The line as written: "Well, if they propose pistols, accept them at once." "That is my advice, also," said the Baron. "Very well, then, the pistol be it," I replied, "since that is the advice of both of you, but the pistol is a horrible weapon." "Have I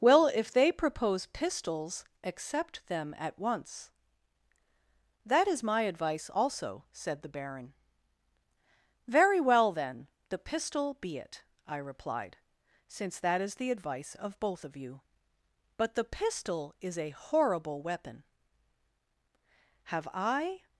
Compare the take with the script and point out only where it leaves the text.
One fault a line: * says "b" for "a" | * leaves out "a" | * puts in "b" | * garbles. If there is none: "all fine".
all fine